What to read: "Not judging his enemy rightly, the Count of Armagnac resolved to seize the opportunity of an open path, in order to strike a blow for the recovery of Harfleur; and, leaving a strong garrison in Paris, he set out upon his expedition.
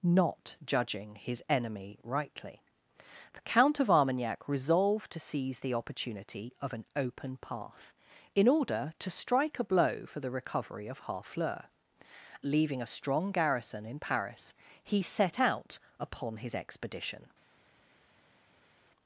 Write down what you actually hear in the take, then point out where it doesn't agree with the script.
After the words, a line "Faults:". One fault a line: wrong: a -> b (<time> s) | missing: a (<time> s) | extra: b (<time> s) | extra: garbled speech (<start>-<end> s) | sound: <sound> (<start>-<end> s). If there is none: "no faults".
"Not judging his enemy rightly, the Count of Armagnac resolved to seize the opportunity of an open path, in order to strike a blow for the recovery of Harfleur; leaving a strong garrison in Paris, he set out upon his expedition.
Faults:
missing: and (11.7 s)